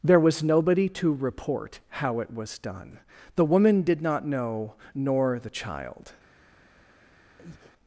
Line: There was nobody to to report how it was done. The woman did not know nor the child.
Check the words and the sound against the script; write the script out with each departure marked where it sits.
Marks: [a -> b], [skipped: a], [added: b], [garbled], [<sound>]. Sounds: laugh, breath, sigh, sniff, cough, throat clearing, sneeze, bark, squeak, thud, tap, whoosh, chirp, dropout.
There was nobody to [skipped: to] report how it was done. The woman did not know nor the child. [breath]